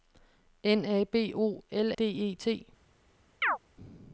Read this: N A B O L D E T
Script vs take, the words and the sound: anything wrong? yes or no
yes